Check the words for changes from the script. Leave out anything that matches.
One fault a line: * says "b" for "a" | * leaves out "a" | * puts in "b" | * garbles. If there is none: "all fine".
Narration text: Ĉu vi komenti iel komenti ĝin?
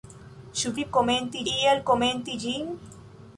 all fine